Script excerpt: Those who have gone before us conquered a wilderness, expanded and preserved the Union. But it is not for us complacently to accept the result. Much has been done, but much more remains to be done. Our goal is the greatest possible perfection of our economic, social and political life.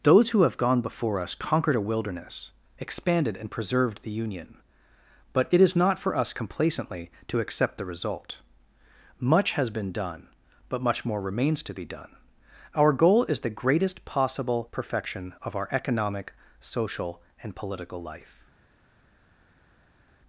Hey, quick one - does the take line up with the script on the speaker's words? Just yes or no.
yes